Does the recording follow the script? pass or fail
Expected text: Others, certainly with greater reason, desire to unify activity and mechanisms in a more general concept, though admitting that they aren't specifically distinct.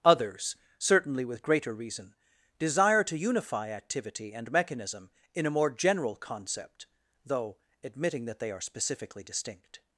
fail